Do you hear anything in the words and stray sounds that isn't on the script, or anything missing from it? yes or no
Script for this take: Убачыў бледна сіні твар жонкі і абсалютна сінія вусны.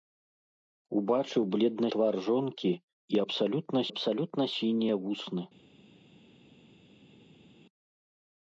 yes